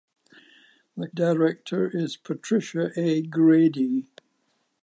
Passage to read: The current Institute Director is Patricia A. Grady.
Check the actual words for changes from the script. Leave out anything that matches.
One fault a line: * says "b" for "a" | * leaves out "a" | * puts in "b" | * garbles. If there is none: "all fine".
* leaves out "current Institute"